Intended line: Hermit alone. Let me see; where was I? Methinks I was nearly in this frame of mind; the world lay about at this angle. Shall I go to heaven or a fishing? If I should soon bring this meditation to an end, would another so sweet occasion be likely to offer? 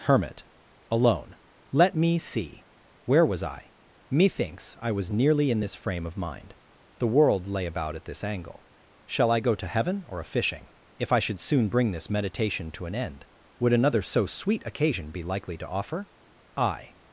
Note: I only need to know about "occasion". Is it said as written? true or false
true